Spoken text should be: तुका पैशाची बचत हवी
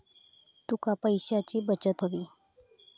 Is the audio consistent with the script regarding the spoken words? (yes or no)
yes